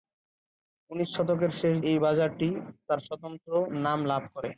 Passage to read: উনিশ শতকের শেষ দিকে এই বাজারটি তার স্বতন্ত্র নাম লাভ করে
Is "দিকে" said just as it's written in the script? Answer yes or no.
no